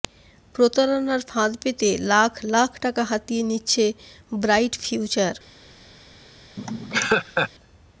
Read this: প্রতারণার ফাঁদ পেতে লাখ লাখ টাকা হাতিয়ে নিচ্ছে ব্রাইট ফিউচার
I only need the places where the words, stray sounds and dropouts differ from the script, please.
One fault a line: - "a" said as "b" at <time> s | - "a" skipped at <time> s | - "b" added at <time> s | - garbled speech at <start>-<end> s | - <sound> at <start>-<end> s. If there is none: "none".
- laugh at 6.6-7.5 s